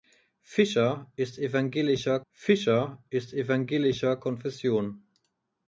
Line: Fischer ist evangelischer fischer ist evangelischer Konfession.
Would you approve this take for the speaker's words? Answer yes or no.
yes